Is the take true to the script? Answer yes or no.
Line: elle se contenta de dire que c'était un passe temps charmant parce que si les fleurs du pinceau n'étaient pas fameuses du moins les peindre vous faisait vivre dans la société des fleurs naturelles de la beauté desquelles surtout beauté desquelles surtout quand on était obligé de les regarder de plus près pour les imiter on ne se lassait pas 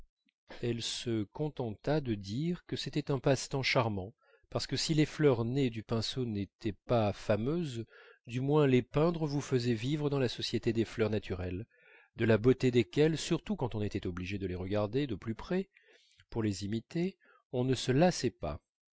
no